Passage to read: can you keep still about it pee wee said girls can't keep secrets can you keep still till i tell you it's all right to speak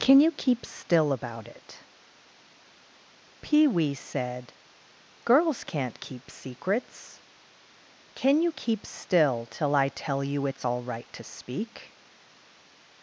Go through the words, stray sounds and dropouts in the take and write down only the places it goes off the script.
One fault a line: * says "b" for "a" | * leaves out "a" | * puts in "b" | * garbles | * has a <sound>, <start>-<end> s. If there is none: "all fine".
all fine